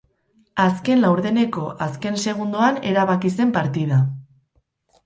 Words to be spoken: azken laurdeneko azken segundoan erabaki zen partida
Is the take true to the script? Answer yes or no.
yes